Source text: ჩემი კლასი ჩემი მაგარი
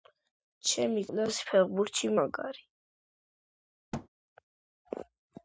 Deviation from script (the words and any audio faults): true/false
true